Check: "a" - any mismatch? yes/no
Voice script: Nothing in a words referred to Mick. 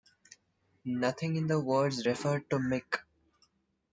yes